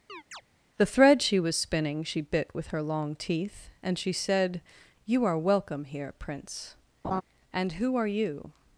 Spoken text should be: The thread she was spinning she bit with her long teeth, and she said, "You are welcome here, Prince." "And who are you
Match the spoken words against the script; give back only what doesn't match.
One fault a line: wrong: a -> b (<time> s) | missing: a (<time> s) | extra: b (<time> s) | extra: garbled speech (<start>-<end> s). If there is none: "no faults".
no faults